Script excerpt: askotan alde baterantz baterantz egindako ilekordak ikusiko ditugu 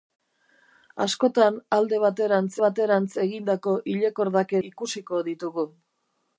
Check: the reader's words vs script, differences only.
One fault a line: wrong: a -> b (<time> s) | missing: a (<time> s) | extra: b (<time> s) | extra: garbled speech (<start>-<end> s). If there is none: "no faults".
no faults